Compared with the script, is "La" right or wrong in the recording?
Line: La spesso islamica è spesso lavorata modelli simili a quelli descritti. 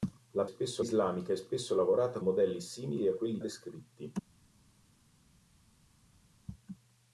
right